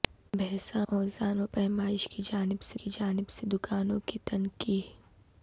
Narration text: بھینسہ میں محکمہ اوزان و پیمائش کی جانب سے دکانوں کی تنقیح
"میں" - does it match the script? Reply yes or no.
no